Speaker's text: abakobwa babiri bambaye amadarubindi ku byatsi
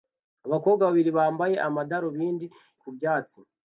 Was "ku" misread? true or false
false